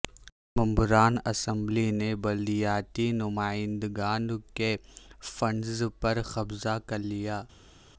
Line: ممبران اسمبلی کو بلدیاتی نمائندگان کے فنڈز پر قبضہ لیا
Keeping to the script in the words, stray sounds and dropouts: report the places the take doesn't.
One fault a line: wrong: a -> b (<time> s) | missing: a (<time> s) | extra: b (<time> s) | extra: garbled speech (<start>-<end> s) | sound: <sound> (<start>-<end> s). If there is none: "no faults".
wrong: کو -> نے (1.9 s)
extra: کر (6.9 s)